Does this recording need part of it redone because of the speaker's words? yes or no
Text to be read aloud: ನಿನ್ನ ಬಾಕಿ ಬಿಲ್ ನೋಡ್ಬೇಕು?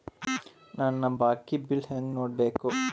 yes